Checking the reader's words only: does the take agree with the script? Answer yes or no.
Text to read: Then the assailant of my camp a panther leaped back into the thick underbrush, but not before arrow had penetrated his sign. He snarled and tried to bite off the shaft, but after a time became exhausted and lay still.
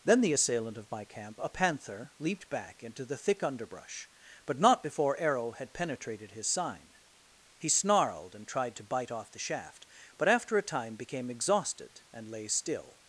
yes